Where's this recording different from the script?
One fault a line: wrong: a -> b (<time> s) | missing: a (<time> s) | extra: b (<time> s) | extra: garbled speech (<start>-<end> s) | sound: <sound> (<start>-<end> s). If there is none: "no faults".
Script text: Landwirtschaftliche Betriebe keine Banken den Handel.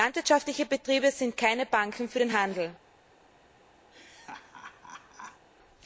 extra: sind (1.1 s)
extra: für (2.1 s)
sound: laugh (3.9-5.5 s)